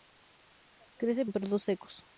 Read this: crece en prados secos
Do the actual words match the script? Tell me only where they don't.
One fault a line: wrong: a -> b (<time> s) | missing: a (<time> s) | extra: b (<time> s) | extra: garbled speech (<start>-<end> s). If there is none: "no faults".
no faults